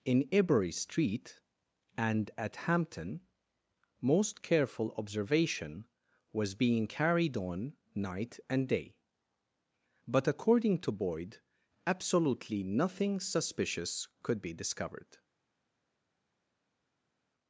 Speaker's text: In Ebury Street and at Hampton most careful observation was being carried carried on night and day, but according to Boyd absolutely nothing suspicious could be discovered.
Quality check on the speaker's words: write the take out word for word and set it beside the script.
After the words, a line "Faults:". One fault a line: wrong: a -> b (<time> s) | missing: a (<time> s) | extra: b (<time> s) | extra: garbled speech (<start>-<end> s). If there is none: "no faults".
In Ebury Street and at Hampton most careful observation was being carried on night and day, but according to Boyd absolutely nothing suspicious could be discovered.
Faults:
missing: carried (7.3 s)